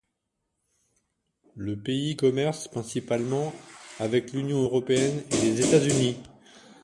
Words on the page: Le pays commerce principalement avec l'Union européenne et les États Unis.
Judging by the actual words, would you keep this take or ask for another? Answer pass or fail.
pass